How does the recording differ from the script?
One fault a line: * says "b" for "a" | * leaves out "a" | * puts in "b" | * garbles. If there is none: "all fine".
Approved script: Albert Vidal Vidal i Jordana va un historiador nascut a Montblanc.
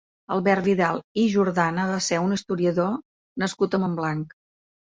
* leaves out "Vidal"
* puts in "ser"